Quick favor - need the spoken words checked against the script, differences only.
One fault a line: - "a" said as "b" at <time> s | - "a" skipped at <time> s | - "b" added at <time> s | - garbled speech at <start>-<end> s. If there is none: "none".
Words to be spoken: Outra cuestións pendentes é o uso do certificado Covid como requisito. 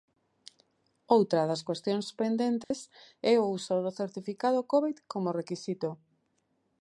- "das" added at 1.5 s